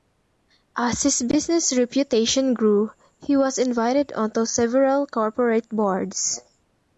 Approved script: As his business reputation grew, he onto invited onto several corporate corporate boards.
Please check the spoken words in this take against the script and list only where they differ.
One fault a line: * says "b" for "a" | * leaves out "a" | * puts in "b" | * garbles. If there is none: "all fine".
* says "was" for "onto"
* leaves out "corporate"